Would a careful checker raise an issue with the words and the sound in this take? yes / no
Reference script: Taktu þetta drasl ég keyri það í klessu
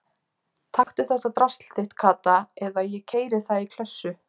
yes